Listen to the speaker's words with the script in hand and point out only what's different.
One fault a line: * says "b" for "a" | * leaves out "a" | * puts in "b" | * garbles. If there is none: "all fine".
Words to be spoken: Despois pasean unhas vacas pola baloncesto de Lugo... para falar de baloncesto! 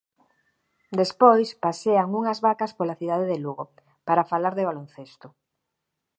* says "cidade" for "baloncesto"